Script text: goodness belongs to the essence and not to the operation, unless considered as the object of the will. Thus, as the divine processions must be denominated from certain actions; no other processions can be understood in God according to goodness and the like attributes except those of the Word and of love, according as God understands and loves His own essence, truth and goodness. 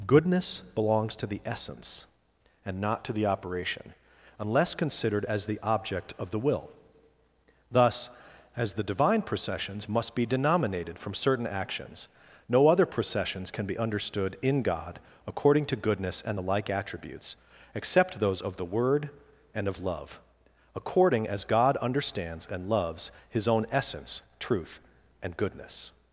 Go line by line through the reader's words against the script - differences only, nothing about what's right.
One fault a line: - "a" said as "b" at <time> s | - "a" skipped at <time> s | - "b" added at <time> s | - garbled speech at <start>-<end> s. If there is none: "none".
none